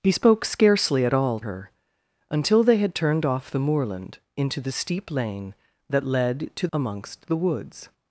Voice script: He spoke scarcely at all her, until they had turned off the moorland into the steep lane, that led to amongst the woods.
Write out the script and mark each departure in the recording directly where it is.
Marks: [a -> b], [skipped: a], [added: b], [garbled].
He spoke scarcely at all her, until they had turned off the moorland into the steep lane, that led to amongst the woods.